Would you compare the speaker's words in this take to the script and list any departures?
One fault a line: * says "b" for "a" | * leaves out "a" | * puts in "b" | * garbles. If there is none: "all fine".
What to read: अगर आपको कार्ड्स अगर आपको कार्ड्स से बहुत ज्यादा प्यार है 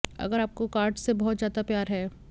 * leaves out "अगर आपको कार्ड्स"